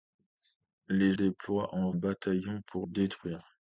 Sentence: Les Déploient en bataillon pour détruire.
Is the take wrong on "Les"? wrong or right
right